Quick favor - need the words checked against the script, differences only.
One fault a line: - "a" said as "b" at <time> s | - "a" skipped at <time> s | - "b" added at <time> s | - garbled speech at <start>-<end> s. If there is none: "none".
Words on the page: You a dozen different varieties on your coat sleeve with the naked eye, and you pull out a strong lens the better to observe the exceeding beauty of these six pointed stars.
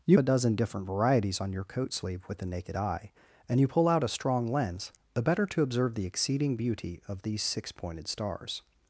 none